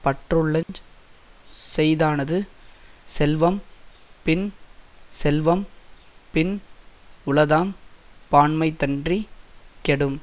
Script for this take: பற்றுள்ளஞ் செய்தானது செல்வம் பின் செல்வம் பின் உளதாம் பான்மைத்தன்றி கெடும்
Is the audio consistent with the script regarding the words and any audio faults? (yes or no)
no